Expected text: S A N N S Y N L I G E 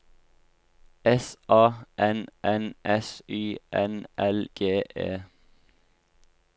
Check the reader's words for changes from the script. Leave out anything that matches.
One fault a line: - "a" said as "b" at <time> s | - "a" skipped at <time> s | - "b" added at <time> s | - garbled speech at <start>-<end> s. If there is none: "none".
- "I" skipped at 4.5 s